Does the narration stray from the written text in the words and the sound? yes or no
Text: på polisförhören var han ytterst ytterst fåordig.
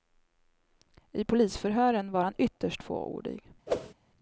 yes